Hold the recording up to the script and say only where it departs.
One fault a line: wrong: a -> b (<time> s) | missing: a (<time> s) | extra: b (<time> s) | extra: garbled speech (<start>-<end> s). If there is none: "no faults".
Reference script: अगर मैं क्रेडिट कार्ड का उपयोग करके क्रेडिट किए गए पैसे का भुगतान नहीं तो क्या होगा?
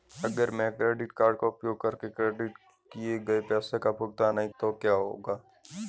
no faults